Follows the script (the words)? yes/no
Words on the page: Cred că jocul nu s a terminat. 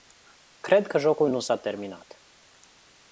yes